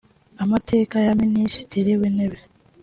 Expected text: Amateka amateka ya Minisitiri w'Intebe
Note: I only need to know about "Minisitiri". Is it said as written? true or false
true